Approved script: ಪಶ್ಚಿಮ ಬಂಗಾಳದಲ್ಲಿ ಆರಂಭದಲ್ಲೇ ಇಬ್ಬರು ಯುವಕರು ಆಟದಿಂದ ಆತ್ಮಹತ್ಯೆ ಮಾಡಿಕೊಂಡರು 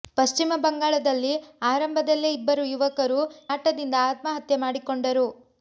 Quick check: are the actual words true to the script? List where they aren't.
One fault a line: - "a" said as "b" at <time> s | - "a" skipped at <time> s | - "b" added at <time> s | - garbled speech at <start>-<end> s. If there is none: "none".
none